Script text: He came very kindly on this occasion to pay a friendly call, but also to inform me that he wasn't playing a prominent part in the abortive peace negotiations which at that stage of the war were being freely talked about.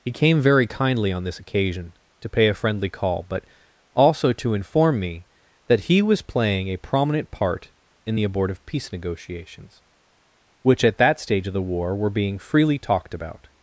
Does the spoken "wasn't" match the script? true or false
false